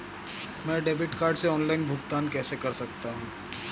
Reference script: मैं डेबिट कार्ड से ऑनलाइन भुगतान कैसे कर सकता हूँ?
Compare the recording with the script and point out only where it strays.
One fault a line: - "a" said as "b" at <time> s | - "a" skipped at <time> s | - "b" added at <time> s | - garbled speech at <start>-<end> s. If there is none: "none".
none